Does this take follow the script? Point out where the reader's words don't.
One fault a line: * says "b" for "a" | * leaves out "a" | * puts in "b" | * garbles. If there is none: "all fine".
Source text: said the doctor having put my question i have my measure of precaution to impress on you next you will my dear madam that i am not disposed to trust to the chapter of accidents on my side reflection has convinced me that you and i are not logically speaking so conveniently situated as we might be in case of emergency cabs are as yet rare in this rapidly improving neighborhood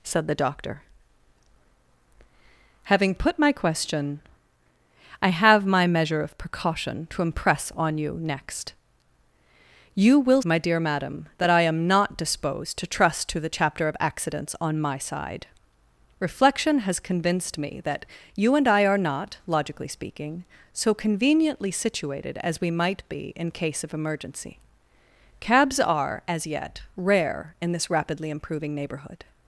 all fine